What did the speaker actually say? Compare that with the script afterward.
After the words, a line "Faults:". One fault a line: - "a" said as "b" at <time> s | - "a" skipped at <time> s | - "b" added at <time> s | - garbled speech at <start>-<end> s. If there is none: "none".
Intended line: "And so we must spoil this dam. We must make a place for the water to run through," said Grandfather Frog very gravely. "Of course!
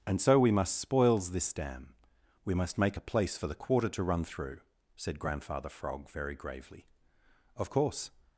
"And so we must spoils this dam. We must make a place for the quarter to run through," said Grandfather Frog very gravely. "Of course!
Faults:
- "spoil" said as "spoils" at 0.8 s
- "water" said as "quarter" at 3.5 s